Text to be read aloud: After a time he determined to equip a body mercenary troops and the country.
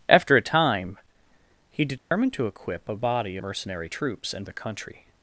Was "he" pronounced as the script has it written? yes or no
yes